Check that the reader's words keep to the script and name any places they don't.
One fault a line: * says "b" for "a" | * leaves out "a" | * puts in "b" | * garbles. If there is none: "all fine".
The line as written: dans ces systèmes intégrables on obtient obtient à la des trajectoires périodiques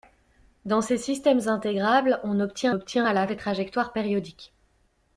all fine